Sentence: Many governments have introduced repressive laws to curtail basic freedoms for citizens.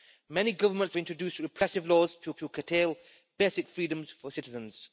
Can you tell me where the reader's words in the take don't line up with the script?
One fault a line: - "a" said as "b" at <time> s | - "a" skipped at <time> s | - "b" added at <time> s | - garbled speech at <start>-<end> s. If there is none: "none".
- "have" skipped at 0.9 s
- "to" added at 2.4 s